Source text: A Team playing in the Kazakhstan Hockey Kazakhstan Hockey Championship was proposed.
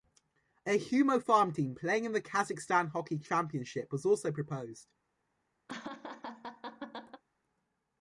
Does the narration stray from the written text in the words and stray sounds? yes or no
yes